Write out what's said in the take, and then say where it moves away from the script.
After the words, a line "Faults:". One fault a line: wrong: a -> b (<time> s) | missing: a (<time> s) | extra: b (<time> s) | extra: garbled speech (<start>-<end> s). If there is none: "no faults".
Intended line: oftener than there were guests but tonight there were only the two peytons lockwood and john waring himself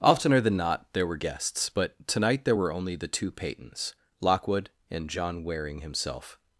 oftener than not there were guests but tonight there were only the two peytons lockwood and john waring himself
Faults:
extra: not (0.6 s)